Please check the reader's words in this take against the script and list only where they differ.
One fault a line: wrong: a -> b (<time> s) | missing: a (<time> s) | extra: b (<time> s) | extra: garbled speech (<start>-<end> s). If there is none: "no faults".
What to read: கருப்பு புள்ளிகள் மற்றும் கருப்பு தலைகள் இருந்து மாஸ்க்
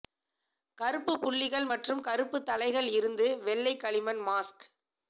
extra: வெள்ளை களிமண் (3.4 s)